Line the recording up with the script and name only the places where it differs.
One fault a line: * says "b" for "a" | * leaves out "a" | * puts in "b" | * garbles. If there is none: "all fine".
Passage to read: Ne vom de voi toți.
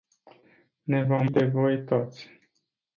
all fine